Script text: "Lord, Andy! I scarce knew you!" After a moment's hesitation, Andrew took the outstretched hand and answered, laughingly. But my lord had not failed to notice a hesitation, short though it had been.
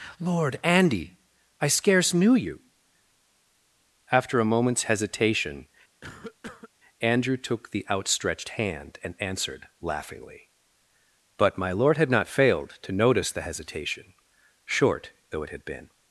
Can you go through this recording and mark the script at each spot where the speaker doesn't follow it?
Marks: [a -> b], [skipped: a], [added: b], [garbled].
"Lord, Andy! I scarce knew you!" After a moment's hesitation, Andrew took the outstretched hand and answered, laughingly. But my lord had not failed to notice [a -> the] hesitation, short though it had been.